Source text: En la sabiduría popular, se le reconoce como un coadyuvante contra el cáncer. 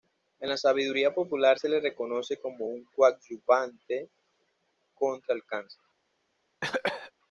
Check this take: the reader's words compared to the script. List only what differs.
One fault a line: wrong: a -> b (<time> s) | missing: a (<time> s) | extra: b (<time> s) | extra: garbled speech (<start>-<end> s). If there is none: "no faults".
no faults